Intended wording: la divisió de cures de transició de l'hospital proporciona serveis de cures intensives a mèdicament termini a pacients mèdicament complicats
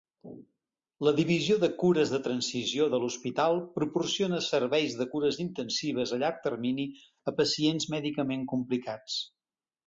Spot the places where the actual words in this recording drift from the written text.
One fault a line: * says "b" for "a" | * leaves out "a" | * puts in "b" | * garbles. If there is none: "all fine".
* says "llarg" for "mèdicament"